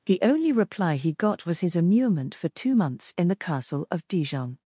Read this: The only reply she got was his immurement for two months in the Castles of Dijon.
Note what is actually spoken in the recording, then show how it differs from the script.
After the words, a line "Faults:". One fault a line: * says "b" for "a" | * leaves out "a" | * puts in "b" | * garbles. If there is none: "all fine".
The only reply he got was his immurement for two months in the Castle of Dijon.
Faults:
* says "he" for "she"
* says "Castle" for "Castles"